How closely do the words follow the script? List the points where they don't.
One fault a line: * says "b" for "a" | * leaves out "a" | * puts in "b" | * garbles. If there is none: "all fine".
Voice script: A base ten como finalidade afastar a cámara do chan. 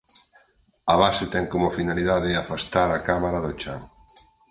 all fine